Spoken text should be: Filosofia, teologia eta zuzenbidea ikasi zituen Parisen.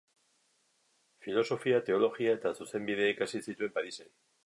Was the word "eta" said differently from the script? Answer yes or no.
no